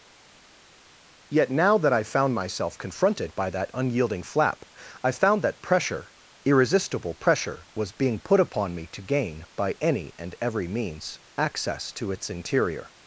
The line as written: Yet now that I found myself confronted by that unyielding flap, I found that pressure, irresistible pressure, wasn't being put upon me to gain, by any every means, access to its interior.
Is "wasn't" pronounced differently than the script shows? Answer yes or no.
yes